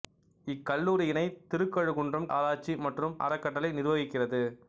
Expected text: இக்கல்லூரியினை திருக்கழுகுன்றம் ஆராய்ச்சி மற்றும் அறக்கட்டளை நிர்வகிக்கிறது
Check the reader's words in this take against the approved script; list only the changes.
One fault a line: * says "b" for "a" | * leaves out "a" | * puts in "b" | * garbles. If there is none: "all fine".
all fine